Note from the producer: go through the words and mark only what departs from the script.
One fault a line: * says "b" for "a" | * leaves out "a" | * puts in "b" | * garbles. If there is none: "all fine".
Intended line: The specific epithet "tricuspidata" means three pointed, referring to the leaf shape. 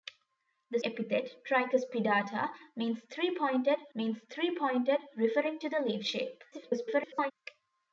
* leaves out "specific"
* puts in "means three pointed"
* garbles